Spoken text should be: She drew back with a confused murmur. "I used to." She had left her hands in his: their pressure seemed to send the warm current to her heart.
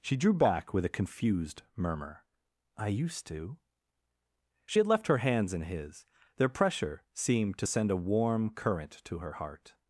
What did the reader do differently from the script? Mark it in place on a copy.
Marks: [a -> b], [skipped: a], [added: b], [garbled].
She drew back with a confused murmur. "I used to." She had left her hands in his: their pressure seemed to send [the -> a] warm current to her heart.